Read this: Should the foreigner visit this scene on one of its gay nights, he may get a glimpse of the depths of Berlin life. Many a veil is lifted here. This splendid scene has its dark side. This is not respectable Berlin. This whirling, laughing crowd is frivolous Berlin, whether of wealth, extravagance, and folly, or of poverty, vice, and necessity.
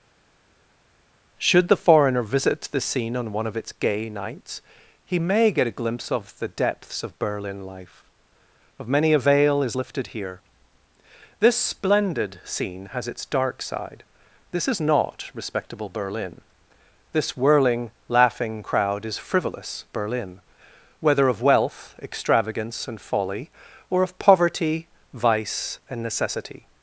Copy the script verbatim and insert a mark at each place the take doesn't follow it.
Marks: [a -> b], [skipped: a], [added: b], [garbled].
Should the foreigner visit [this -> the] scene on one of its gay nights, he may get a glimpse of the depths of Berlin life. [added: of] Many a veil is lifted here. This splendid scene has its dark side. This is not respectable Berlin. This whirling, laughing crowd is frivolous Berlin, whether of wealth, extravagance, and folly, or of poverty, vice, and necessity.